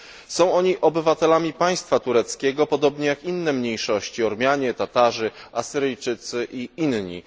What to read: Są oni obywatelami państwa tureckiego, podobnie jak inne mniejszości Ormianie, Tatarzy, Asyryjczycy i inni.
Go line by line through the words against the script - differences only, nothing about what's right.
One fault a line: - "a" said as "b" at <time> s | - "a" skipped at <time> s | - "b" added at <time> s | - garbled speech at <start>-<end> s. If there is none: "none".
none